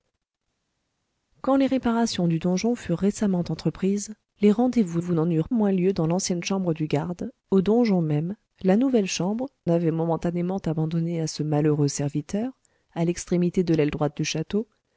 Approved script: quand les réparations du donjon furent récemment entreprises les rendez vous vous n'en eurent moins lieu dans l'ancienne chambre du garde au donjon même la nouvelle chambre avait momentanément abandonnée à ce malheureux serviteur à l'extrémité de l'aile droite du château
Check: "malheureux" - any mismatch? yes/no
no